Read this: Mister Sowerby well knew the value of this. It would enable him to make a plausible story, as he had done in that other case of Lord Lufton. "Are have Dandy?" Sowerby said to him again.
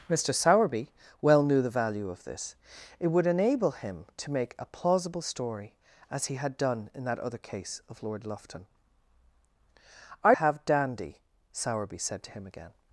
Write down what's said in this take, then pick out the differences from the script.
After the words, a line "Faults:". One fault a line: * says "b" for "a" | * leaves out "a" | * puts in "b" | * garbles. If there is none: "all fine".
Mister Sowerby well knew the value of this. It would enable him to make a plausible story, as he had done in that other case of Lord Lufton. "Are have Dandy?" Sowerby said to him again.
Faults:
all fine